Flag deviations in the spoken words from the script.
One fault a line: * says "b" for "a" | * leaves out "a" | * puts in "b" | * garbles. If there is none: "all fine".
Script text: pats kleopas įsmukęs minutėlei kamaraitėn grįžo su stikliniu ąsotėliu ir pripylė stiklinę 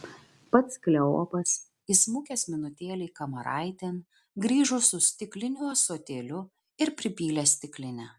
all fine